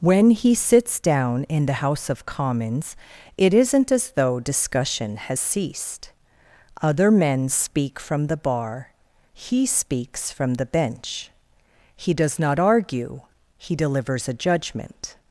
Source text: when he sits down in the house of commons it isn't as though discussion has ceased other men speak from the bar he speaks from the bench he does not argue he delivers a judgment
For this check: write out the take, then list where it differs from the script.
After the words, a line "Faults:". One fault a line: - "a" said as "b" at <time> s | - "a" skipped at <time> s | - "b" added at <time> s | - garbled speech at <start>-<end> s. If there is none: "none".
when he sits down in the house of commons it isn't as though discussion has ceased other men speak from the bar he speaks from the bench he does not argue he delivers a judgment
Faults:
none